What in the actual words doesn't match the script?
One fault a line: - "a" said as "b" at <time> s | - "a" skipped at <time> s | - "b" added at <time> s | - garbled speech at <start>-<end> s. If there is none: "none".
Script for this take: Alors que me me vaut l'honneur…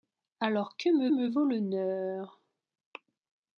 none